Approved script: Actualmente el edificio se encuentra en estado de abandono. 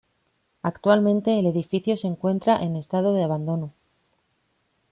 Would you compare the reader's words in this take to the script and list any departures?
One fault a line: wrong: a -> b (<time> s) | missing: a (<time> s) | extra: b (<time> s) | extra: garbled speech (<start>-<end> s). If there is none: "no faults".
no faults